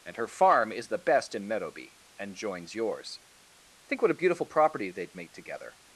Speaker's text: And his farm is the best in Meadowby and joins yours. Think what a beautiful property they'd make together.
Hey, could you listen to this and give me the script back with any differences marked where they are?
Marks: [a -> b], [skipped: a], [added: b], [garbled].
And [his -> her] farm is the best in Meadowby and joins yours. Think what a beautiful property they'd make together.